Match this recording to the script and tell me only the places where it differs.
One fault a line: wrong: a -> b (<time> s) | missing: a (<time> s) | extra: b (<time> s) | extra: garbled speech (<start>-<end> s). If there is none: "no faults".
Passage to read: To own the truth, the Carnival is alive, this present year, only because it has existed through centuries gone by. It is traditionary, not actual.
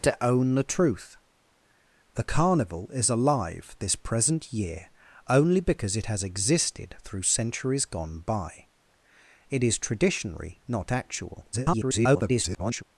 extra: garbled speech (11.5-12.8 s)